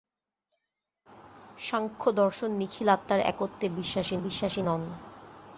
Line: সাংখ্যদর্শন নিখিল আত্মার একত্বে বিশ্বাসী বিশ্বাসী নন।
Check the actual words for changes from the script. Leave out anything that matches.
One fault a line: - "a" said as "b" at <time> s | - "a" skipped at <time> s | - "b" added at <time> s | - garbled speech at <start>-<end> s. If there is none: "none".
none